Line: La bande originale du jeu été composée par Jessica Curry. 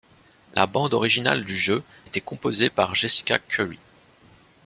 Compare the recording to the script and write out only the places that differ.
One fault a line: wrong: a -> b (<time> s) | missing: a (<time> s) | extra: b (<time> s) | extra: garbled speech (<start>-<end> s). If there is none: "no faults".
no faults